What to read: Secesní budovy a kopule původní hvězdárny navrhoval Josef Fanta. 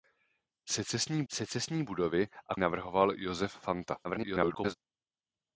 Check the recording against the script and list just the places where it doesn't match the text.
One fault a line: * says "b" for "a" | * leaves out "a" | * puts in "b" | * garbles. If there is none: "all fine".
* puts in "secesní"
* leaves out "kopule původní hvězdárny"
* garbles